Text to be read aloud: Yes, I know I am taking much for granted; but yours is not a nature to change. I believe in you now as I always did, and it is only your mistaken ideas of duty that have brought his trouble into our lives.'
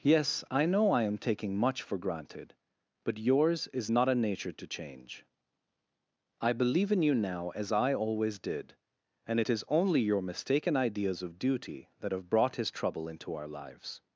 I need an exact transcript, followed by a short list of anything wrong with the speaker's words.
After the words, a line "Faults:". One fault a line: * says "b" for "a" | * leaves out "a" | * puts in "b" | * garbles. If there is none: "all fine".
Yes, I know I am taking much for granted; but yours is not a nature to change. I believe in you now as I always did, and it is only your mistaken ideas of duty that have brought his trouble into our lives.'
Faults:
all fine